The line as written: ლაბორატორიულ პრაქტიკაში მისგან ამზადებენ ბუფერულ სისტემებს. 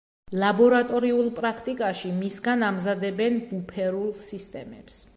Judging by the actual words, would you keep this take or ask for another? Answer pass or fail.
pass